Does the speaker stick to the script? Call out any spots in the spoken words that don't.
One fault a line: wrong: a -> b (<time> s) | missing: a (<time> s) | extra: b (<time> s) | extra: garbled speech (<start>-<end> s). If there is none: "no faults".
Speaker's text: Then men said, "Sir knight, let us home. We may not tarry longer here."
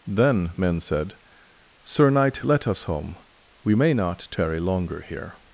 no faults